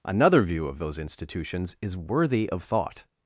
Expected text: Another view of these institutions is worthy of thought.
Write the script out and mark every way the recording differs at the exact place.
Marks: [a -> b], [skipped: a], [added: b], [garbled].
Another view of [these -> those] institutions is worthy of thought.